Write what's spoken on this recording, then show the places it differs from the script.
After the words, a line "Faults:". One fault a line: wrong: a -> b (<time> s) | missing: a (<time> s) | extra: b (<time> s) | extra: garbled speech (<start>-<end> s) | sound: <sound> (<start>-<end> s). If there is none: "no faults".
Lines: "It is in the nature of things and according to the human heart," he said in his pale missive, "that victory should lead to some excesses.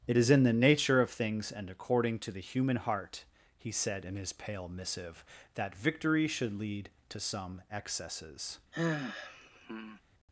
"It is in the nature of things and according to the human heart," he said in his pale missive, "that victory should lead to some excesses.
Faults:
sound: sigh (8.7-10.0 s)